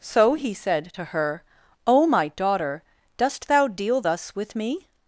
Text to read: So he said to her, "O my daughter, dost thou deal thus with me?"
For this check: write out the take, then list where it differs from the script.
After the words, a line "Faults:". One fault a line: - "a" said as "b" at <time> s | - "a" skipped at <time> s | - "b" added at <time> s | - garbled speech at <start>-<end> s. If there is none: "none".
So he said to her, "O my daughter, dost thou deal thus with me?"
Faults:
none